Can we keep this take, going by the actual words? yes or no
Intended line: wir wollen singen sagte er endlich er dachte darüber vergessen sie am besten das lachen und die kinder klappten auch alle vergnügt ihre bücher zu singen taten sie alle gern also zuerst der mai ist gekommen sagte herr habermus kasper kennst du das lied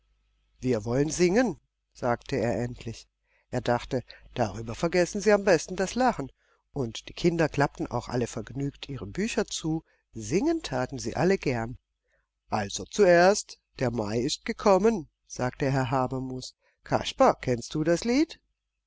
yes